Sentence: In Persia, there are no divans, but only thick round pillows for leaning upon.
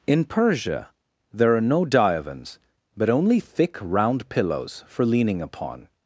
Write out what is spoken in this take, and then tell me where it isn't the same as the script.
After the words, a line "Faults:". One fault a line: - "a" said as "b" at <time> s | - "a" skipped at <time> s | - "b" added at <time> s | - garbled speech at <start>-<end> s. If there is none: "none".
In Persia, there are no divans, but only thick round pillows for leaning upon.
Faults:
none